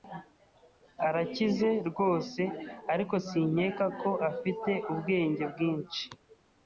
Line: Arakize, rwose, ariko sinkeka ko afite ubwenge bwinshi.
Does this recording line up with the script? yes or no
yes